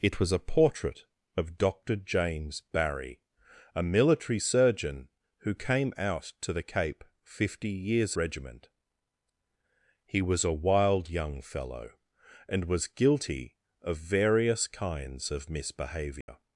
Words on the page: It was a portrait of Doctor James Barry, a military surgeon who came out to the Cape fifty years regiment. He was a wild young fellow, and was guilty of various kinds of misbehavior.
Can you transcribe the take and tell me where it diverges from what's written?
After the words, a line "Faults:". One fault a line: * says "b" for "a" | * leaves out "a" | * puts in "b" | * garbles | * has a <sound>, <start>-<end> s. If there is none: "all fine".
It was a portrait of Doctor James Barry, a military surgeon who came out to the Cape fifty years regiment. He was a wild young fellow, and was guilty of various kinds of misbehavior.
Faults:
* has a dropout, 16.2-16.3 s